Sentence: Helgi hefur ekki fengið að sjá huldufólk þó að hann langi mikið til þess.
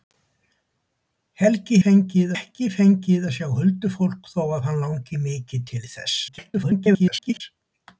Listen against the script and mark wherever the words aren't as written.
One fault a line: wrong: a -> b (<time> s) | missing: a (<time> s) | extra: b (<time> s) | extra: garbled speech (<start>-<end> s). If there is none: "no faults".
wrong: hefur -> fengið (1.8 s)
extra: garbled speech (6.3-7.4 s)